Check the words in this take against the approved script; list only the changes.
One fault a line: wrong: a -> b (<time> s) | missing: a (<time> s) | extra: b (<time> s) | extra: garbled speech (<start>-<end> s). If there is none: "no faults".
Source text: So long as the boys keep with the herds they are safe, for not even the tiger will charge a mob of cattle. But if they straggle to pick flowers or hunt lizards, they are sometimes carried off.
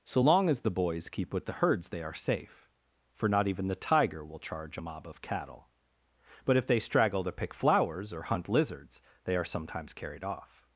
no faults